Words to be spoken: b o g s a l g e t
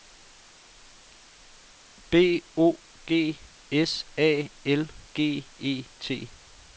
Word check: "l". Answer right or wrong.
right